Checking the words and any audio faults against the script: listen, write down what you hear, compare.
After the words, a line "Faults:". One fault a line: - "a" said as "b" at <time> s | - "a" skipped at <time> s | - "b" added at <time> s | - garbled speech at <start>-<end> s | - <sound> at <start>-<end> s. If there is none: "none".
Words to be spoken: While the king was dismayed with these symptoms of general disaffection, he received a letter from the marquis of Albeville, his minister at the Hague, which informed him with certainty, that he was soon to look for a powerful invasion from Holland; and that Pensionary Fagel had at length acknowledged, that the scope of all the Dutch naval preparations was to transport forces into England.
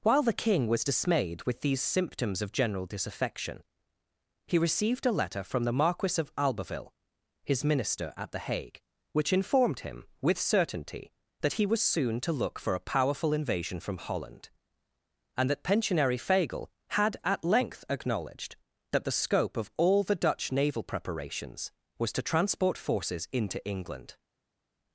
While the king was dismayed with these symptoms of general disaffection, he received a letter from the marquis of Albeville, his minister at the Hague, which informed him with certainty, that he was soon to look for a powerful invasion from Holland; and that Pensionary Fagel had at length acknowledged, that the scope of all the Dutch naval preparations was to transport forces into England.
Faults:
none